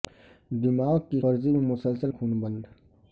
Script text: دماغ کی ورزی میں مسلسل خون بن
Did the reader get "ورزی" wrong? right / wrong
right